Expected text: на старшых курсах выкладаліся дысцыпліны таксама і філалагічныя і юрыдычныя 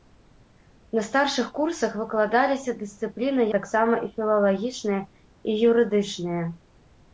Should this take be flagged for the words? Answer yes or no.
no